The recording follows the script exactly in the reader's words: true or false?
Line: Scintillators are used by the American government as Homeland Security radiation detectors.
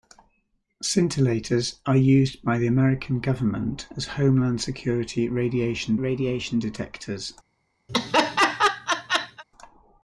false